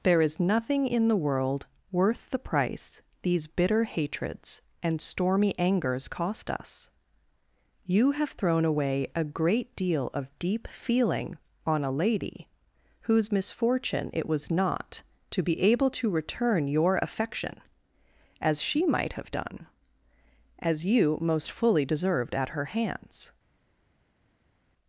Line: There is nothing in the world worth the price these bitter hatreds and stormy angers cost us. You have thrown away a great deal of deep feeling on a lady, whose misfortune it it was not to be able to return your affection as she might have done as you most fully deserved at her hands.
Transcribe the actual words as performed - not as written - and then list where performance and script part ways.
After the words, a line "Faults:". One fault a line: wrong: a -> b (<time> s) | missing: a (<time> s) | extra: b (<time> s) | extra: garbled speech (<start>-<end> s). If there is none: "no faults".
There is nothing in the world worth the price these bitter hatreds and stormy angers cost us. You have thrown away a great deal of deep feeling on a lady, whose misfortune it was not to be able to return your affection as she might have done as you most fully deserved at her hands.
Faults:
missing: it (14.3 s)